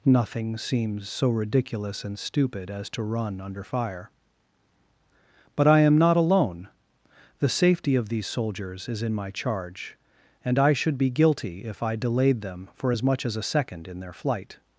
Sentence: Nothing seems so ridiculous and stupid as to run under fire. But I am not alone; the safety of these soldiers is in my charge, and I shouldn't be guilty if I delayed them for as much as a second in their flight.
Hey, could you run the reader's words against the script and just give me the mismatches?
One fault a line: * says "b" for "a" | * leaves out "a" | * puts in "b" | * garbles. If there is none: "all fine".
* says "should" for "shouldn't"